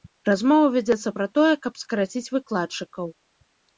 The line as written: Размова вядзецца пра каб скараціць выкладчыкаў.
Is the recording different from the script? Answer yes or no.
yes